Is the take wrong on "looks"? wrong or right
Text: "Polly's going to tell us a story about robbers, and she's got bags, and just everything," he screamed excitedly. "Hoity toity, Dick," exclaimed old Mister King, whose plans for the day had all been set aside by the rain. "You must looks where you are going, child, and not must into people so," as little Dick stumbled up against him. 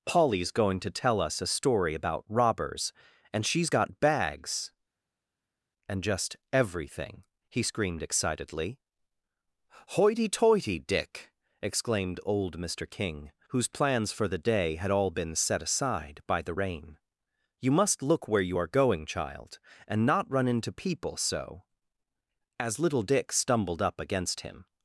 wrong